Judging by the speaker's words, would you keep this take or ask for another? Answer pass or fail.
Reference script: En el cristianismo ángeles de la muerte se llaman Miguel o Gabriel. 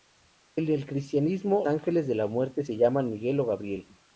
pass